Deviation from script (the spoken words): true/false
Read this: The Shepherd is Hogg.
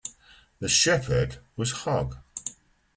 true